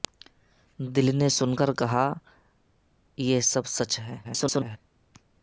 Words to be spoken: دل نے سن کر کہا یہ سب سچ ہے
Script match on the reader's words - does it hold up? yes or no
no